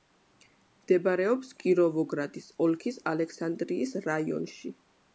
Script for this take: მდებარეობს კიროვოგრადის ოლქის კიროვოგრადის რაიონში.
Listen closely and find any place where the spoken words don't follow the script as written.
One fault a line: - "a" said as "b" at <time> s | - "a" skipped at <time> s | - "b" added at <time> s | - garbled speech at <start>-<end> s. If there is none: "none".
- "კიროვოგრადის" said as "ალექსანდრიის" at 3.1 s